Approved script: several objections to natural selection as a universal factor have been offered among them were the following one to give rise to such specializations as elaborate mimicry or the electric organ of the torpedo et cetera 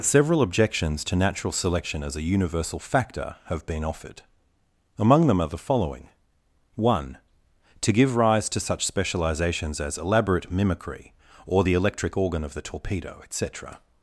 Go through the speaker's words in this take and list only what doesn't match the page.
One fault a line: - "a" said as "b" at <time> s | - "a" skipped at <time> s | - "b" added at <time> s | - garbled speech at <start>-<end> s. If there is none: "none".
- "were" said as "are" at 5.4 s